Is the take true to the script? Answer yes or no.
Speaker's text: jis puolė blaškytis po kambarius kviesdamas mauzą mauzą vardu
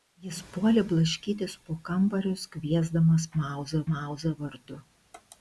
yes